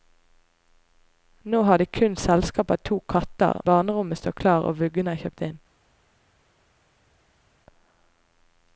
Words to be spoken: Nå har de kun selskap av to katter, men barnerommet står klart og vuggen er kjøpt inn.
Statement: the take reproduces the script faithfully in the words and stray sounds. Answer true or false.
false